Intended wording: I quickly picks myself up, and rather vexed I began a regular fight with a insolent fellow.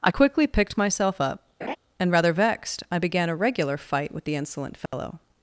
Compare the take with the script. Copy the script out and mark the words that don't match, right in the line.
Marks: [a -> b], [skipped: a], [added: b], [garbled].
I quickly [picks -> picked] myself up, and rather vexed I began a regular fight with [a -> the] insolent fellow.